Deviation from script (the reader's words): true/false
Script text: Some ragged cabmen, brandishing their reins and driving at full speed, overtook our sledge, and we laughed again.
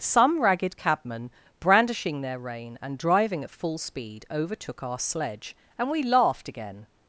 true